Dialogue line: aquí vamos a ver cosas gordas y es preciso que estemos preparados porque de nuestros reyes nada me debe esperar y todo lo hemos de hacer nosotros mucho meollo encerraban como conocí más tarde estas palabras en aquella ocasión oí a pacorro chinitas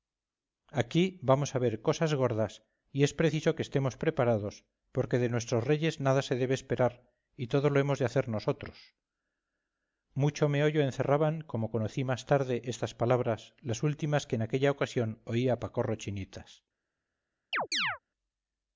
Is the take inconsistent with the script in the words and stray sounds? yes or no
yes